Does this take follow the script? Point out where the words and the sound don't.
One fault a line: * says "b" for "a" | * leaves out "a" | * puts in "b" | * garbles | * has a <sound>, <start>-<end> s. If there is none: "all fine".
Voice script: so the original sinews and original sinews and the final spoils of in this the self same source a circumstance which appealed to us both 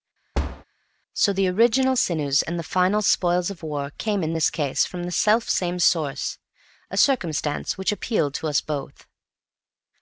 * has a thud, 0.3-0.6 s
* leaves out "original sinews and"
* puts in "war came"
* puts in "case from"